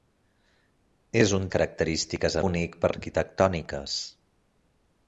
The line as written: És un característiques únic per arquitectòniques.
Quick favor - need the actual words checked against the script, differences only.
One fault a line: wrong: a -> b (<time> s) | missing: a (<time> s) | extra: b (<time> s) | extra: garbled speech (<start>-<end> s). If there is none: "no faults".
no faults